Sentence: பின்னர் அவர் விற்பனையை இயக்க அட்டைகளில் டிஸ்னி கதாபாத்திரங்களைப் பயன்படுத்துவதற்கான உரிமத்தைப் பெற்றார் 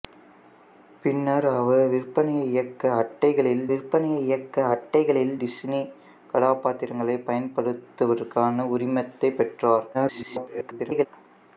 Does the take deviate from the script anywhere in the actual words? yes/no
yes